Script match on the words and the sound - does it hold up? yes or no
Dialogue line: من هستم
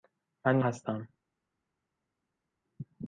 yes